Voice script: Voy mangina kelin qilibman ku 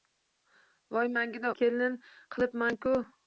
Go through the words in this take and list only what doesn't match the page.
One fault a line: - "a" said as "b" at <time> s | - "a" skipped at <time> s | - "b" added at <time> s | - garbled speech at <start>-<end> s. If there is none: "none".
none